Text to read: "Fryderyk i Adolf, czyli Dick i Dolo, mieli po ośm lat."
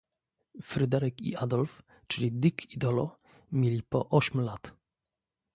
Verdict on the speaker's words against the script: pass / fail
pass